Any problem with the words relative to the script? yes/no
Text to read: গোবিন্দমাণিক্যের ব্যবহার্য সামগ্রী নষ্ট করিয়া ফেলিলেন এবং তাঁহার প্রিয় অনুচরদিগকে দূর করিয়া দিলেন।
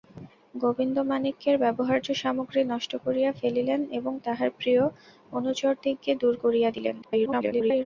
yes